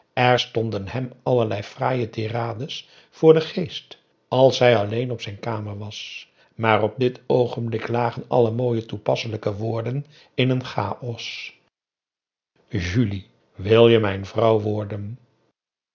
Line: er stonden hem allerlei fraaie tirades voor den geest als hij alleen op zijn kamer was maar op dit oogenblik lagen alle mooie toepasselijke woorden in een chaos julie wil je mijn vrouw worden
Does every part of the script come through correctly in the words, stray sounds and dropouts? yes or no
yes